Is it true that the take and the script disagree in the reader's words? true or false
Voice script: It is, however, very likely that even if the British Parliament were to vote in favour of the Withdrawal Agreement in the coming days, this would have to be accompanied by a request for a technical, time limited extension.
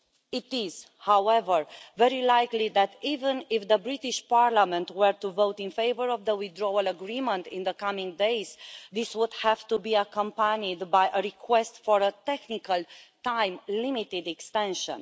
false